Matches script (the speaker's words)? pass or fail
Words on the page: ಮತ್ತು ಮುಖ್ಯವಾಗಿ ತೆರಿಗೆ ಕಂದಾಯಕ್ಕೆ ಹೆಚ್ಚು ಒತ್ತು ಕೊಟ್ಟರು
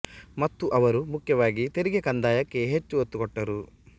fail